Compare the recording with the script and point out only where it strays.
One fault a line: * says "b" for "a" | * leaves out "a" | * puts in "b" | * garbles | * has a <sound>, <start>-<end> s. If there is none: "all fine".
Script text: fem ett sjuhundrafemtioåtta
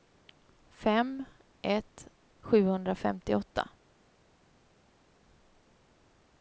all fine